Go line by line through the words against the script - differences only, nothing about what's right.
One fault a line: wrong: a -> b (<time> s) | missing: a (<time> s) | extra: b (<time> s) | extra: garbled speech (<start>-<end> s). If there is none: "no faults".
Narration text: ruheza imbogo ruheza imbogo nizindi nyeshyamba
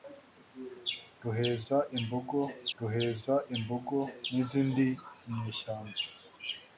no faults